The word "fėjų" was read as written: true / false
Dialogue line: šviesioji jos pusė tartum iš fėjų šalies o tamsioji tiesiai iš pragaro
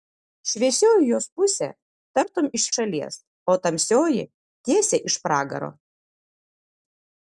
false